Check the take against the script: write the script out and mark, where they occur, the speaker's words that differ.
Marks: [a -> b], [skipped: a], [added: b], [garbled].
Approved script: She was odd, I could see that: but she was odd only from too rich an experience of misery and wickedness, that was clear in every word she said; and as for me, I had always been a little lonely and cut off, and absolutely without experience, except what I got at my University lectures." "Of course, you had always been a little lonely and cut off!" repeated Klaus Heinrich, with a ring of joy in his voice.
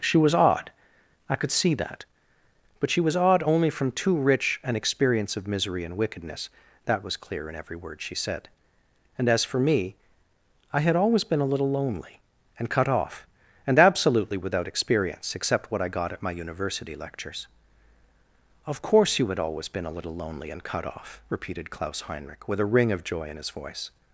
She was odd, I could see that: but she was odd only from too rich an experience of misery and wickedness, that was clear in every word she said; and as for me, I had always been a little lonely and cut off, and absolutely without experience, except what I got at my University lectures." "Of course, you had always been a little lonely and cut off!" repeated Klaus Heinrich, with a ring of joy in his voice.